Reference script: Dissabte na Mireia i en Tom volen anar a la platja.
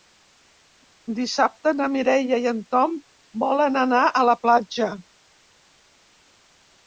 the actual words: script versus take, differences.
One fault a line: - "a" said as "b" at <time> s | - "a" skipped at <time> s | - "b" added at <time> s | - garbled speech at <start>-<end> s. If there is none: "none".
none